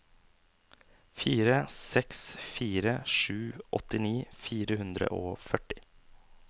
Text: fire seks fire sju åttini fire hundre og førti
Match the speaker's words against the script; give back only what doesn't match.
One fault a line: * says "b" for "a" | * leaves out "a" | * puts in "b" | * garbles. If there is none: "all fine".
all fine